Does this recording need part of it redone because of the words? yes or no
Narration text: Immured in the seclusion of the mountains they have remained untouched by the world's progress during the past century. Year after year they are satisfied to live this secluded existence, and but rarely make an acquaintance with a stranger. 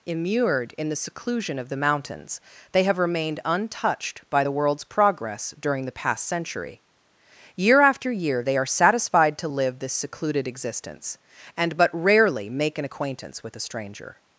no